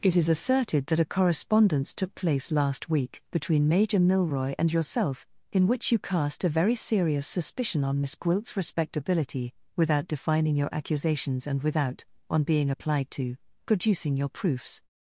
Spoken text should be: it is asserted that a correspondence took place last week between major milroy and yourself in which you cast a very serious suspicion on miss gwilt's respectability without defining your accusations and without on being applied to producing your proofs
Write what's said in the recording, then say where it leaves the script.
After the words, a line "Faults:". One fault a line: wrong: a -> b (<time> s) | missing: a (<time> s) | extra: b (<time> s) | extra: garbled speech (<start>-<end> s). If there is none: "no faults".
it is asserted that a correspondence took place last week between major milroy and yourself in which you cast a very serious suspicion on miss gwilt's respectability without defining your accusations and without on being applied to producing your proofs
Faults:
no faults